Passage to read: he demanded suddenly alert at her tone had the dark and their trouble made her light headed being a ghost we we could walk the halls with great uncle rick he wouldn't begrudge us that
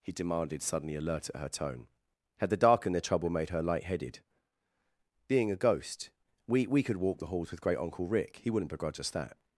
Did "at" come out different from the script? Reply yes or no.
no